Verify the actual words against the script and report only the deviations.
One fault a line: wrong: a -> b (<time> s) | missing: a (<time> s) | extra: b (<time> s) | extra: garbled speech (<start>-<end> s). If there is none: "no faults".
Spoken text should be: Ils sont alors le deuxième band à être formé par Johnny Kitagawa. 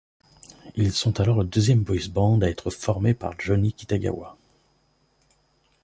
extra: boys (1.8 s)